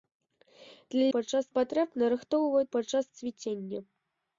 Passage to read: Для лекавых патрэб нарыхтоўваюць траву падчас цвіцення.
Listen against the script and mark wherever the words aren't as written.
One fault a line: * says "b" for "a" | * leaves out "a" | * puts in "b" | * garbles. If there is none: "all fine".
* says "падчас" for "лекавых"
* leaves out "траву"